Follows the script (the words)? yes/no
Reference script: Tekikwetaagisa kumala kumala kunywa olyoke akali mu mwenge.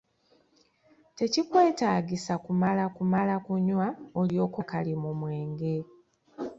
yes